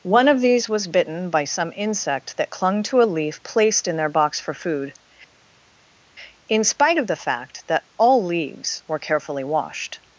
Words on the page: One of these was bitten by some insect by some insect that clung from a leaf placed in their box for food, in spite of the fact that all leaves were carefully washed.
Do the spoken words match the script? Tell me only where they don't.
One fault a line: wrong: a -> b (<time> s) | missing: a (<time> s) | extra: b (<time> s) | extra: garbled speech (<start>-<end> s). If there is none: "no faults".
missing: by some insect (2.4 s)
wrong: from -> to (2.8 s)